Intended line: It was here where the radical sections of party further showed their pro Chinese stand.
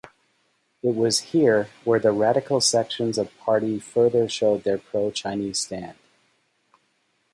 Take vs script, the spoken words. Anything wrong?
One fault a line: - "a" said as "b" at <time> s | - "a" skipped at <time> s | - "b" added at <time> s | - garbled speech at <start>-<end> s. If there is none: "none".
none